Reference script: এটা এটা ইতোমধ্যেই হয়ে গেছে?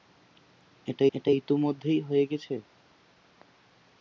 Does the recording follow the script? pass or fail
pass